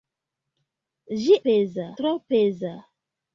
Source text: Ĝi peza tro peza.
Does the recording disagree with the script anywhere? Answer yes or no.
no